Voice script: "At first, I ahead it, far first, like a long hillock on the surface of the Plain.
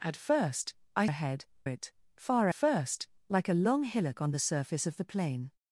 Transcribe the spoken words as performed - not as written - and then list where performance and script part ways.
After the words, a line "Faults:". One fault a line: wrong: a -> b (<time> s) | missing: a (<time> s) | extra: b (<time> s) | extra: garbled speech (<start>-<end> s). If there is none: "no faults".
"At first, I ahead it, far first, like a long hillock on the surface of the Plain.
Faults:
no faults